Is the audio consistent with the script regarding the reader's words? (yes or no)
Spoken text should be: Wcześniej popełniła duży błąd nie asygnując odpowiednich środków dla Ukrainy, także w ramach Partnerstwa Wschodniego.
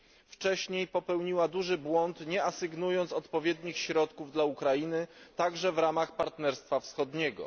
yes